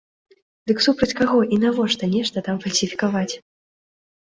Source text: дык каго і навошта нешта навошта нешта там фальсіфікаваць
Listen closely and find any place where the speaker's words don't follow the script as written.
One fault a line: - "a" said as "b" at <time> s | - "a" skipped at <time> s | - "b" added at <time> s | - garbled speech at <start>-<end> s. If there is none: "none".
- "супраць" added at 0.8 s
- "навошта нешта" skipped at 2.4 s